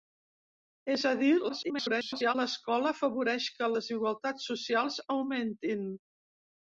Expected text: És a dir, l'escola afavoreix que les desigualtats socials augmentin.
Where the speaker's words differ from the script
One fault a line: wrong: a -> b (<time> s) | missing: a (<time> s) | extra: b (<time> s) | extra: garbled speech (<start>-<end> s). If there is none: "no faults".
extra: garbled speech (1.5-2.4 s)
missing: les (3.7 s)